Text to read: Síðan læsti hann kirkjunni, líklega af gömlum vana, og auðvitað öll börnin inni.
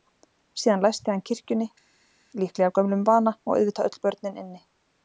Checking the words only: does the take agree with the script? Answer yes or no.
yes